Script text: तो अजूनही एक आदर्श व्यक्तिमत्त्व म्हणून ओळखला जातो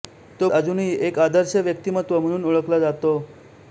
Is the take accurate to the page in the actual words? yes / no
yes